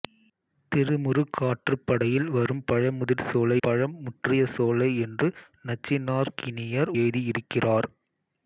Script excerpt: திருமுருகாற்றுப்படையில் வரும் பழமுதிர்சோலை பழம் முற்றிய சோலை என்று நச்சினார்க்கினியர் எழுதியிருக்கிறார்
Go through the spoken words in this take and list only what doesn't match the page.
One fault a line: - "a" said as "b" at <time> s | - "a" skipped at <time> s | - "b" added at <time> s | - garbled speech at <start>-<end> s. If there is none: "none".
none